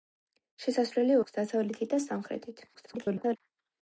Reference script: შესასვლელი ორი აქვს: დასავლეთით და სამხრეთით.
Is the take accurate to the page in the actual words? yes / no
no